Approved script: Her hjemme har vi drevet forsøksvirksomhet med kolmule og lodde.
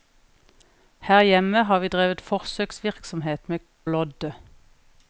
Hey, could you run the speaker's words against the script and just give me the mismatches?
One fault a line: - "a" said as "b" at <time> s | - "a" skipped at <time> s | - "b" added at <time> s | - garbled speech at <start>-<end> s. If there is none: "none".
- "kolmule og" skipped at 3.6 s